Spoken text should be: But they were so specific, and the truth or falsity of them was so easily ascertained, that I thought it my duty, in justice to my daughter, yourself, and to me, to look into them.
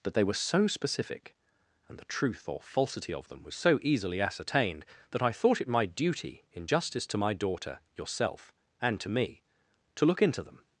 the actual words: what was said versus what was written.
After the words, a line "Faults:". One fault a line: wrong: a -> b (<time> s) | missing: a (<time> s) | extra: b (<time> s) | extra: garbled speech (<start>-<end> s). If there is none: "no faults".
But they were so specific, and the truth or falsity of them was so easily ascertained, that I thought it my duty, in justice to my daughter, yourself, and to me, to look into them.
Faults:
no faults